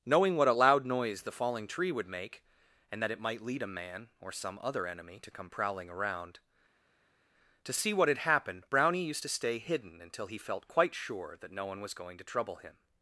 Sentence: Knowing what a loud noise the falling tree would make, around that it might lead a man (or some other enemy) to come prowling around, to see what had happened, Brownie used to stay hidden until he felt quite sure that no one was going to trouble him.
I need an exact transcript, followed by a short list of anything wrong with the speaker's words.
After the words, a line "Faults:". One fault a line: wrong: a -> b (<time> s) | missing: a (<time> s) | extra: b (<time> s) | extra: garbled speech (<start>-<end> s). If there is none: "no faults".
Knowing what a loud noise the falling tree would make, and that it might lead a man (or some other enemy) to come prowling around, to see what had happened, Brownie used to stay hidden until he felt quite sure that no one was going to trouble him.
Faults:
wrong: around -> and (2.9 s)